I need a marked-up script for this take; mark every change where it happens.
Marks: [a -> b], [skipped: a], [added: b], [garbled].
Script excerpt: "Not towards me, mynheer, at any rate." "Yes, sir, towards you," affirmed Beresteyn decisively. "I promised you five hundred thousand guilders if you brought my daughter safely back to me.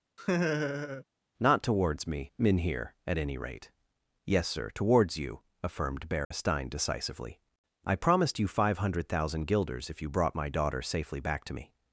"Not towards me, mynheer, at any rate." "Yes, sir, towards you," affirmed Beresteyn decisively. "I promised you five hundred thousand guilders if you brought my daughter safely back to me.